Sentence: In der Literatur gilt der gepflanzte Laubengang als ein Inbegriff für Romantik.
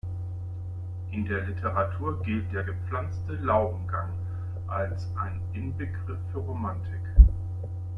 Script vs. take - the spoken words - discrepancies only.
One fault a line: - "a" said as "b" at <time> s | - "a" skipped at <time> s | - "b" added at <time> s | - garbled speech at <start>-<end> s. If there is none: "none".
none